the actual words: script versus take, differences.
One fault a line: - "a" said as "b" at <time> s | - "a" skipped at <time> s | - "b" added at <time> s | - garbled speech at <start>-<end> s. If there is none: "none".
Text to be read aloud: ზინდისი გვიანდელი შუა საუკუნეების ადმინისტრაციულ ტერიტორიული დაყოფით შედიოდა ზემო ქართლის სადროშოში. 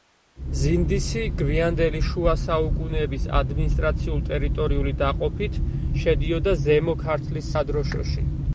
none